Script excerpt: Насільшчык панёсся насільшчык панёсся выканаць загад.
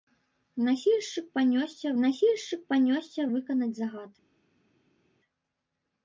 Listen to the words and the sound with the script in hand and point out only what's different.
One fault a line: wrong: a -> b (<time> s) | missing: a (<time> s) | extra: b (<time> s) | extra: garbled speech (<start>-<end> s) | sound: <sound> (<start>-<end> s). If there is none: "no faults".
no faults